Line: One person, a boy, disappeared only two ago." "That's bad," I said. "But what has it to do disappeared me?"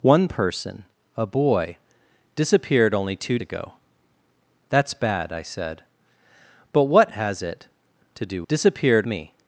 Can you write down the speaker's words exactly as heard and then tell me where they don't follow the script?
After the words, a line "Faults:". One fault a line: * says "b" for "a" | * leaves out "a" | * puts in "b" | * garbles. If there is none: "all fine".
One person, a boy, disappeared only two ago." "That's bad," I said. "But what has it to do disappeared me?"
Faults:
all fine